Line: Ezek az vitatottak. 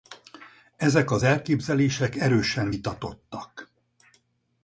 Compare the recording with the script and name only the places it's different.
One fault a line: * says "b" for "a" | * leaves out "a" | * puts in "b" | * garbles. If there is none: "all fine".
* puts in "elképzelések erősen"